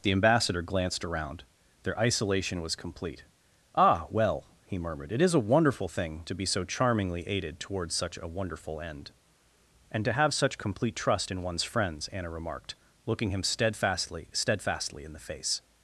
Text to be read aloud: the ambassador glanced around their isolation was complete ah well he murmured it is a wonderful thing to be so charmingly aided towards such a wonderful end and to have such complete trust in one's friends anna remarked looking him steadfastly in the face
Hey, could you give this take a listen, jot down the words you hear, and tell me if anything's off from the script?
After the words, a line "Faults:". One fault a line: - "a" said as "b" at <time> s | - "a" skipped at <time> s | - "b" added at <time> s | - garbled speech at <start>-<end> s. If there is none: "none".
the ambassador glanced around their isolation was complete ah well he murmured it is a wonderful thing to be so charmingly aided towards such a wonderful end and to have such complete trust in one's friends anna remarked looking him steadfastly steadfastly in the face
Faults:
- "steadfastly" added at 14.3 s